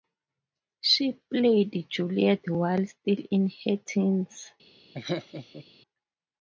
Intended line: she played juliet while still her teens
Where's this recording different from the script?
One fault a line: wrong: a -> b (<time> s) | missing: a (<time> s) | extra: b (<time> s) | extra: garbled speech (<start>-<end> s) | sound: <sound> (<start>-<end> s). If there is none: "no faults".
extra: in (3.3 s)
sound: laugh (4.9-5.7 s)